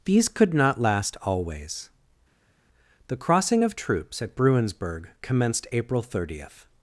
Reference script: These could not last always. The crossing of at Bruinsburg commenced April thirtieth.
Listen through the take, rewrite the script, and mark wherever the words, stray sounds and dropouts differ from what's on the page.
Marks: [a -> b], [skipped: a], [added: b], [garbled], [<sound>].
These could not last always. The crossing of [added: troops] at Bruinsburg commenced April thirtieth.